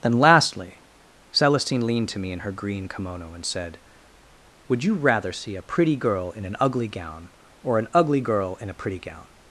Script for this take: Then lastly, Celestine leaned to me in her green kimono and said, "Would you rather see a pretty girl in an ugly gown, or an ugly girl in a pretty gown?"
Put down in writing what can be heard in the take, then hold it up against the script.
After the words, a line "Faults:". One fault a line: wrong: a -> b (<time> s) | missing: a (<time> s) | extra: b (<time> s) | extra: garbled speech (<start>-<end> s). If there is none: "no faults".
Then lastly, Celestine leaned to me in her green kimono and said, "Would you rather see a pretty girl in an ugly gown, or an ugly girl in a pretty gown?"
Faults:
no faults